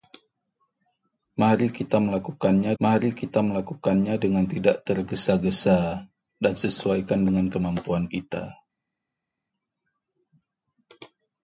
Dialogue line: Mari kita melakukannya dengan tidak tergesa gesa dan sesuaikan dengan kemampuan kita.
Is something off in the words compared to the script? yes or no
yes